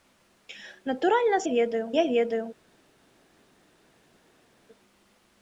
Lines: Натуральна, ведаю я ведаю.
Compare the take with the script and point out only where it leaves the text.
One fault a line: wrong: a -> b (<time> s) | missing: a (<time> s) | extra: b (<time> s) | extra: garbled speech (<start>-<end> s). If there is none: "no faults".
no faults